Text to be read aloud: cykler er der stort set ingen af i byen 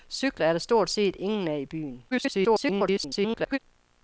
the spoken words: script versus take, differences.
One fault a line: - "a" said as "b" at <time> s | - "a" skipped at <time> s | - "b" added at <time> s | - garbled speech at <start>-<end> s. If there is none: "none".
- garbled speech at 2.1-3.6 s